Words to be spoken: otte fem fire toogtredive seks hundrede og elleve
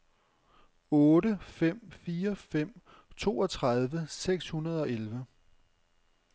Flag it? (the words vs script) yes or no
yes